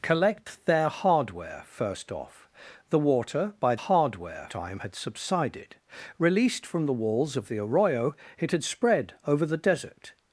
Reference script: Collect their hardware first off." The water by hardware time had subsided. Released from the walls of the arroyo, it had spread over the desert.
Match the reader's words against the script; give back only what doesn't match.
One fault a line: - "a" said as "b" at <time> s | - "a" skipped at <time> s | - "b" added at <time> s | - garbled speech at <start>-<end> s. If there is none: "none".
none